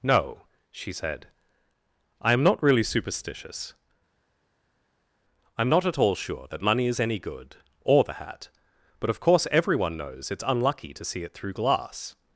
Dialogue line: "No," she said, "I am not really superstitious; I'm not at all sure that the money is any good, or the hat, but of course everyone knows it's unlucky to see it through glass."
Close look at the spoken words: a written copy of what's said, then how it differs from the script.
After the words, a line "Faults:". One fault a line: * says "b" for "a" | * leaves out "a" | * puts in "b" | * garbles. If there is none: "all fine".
"No," she said, "I am not really superstitious; I'm not at all sure that money is any good, or the hat, but of course everyone knows it's unlucky to see it through glass."
Faults:
* leaves out "the"